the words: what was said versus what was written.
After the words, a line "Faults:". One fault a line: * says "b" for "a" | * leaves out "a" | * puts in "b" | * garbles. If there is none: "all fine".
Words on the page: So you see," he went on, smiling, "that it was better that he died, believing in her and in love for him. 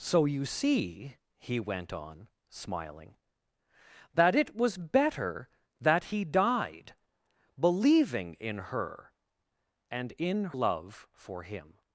So you see," he went on, smiling, "that it was better that he died, believing in her and in love for him.
Faults:
all fine